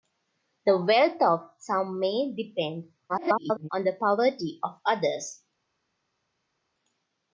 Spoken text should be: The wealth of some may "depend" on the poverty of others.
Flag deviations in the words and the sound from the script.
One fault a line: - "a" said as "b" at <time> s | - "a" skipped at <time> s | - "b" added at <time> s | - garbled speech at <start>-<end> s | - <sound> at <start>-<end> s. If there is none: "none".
- garbled speech at 3.1-3.7 s